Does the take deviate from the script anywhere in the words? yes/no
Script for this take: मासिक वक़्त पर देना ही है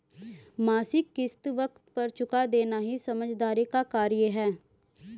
yes